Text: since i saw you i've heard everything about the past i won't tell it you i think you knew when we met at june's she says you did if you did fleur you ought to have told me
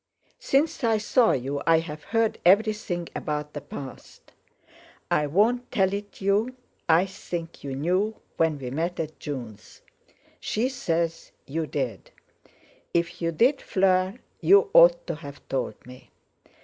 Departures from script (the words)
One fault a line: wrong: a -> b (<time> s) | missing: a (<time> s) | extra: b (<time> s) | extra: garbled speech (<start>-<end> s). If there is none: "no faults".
no faults